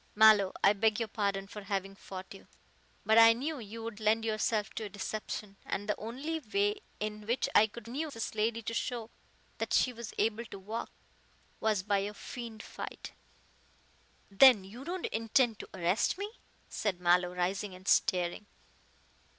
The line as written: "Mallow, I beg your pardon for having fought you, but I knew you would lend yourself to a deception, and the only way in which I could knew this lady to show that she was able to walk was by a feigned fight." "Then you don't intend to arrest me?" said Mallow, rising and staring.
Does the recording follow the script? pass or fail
pass